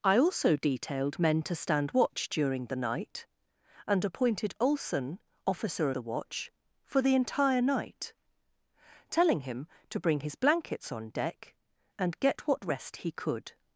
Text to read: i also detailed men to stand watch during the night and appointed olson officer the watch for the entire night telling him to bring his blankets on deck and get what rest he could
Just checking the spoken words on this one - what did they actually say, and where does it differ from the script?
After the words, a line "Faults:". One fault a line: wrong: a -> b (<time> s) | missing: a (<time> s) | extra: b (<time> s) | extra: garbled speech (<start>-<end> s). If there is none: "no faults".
i also detailed men to stand watch during the night and appointed olson officer the watch for the entire night telling him to bring his blankets on deck and get what rest he could
Faults:
no faults